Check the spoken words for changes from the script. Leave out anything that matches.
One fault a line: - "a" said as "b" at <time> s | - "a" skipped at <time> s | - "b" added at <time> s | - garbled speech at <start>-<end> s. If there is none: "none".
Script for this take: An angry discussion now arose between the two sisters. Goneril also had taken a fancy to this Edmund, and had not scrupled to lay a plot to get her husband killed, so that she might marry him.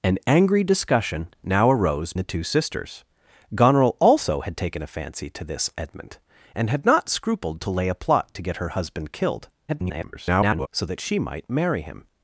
- "between" skipped at 2.1 s
- garbled speech at 9.7-10.7 s